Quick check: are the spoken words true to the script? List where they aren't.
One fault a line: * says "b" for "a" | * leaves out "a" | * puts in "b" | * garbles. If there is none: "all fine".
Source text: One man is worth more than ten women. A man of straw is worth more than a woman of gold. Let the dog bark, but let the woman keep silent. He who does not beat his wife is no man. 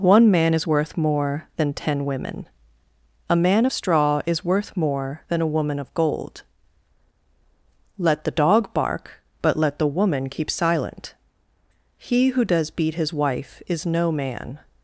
* leaves out "not"